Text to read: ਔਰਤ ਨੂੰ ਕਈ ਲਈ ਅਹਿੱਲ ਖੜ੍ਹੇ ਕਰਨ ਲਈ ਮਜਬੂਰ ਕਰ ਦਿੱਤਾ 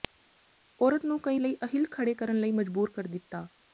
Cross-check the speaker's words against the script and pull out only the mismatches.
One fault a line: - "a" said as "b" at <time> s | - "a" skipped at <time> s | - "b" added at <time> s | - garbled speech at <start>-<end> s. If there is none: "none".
none